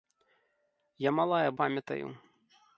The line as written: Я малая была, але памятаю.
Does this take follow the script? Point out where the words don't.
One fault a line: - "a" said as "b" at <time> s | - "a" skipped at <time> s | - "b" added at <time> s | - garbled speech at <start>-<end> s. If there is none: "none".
- "была але" skipped at 1.5 s